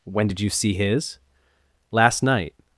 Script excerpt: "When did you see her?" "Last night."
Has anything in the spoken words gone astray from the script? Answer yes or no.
yes